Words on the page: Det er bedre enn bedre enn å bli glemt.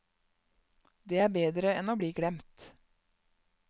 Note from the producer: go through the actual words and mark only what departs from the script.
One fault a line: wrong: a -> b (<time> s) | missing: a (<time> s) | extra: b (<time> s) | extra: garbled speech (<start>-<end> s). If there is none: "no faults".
missing: bedre enn (1.9 s)